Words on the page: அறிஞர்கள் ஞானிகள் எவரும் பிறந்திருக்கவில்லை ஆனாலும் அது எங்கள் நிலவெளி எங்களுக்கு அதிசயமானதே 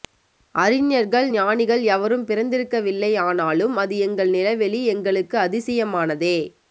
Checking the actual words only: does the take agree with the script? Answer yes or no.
yes